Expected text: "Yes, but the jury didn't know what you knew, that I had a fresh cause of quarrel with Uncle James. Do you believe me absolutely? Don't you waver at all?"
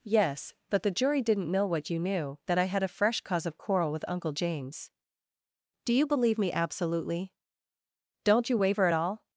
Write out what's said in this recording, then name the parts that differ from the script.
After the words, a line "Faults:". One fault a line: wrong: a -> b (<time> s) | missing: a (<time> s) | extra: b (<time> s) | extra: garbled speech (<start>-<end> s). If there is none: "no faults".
"Yes, but the jury didn't know what you knew, that I had a fresh cause of quarrel with Uncle James. Do you believe me absolutely? Don't you waver at all?"
Faults:
no faults